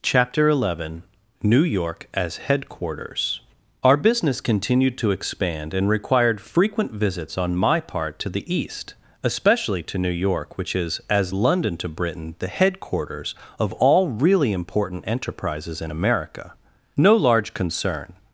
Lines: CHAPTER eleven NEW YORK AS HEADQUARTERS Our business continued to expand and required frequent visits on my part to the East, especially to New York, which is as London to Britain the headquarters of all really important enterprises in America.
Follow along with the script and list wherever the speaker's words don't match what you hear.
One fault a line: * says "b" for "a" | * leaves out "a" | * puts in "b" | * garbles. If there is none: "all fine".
* puts in "No large concern"